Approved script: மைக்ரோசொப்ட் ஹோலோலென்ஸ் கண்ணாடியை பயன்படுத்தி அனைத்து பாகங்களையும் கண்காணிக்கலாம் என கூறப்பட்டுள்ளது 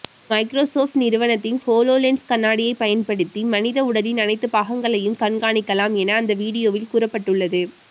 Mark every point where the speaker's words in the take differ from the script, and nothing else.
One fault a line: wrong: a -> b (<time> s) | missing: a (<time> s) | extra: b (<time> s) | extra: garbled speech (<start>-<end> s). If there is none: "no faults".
extra: நிறுவனத்தின் (0.9 s)
extra: மனித உடலின் (3.5 s)
extra: அந்த வீடியோவில் (6.2 s)